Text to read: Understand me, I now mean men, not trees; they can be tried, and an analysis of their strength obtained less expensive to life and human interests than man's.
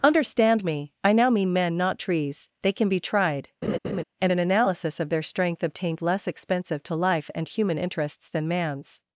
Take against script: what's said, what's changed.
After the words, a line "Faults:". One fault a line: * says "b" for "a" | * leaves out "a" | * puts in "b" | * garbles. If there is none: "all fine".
Understand me, I now mean men, not trees; they can be tried, and an analysis of their strength obtained less expensive to life and human interests than man's.
Faults:
all fine